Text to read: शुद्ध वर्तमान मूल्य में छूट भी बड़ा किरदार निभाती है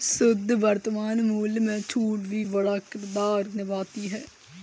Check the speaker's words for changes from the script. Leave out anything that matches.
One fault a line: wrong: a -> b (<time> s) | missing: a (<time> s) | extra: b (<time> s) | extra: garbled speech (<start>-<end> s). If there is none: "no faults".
no faults